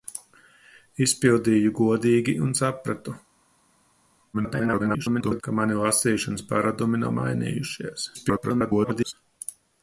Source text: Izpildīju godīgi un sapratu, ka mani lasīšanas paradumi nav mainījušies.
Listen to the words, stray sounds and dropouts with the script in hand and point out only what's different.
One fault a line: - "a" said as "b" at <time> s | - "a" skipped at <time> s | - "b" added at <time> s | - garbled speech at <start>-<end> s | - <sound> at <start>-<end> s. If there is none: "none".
- garbled speech at 4.3-5.4 s
- garbled speech at 8.1-9.1 s